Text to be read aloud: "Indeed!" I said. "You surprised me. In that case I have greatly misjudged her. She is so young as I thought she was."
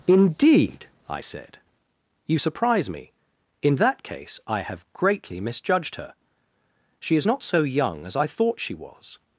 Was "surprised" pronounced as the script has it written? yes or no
no